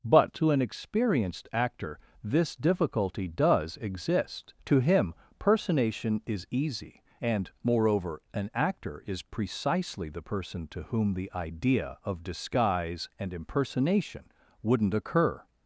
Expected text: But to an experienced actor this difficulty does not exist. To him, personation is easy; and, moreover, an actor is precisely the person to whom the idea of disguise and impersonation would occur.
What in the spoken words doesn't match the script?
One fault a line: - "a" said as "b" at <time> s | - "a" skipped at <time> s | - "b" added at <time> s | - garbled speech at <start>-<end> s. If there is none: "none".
- "not" skipped at 3.8 s
- "would" said as "wouldn't" at 14.6 s